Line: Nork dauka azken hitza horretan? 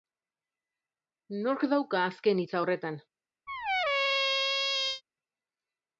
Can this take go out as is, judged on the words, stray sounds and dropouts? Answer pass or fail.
fail